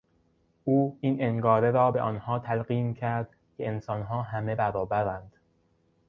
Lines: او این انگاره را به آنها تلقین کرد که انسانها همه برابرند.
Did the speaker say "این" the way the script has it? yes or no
yes